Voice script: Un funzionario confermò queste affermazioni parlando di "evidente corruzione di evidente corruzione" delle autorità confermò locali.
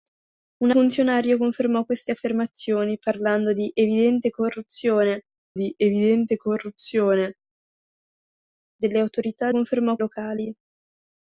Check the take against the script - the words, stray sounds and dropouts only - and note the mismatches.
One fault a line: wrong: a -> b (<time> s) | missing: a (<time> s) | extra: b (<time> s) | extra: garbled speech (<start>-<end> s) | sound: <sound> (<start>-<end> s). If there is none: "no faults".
no faults